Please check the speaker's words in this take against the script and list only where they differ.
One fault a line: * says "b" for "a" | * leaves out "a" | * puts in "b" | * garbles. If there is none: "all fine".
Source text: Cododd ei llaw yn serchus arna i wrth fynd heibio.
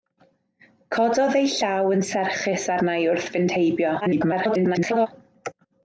* garbles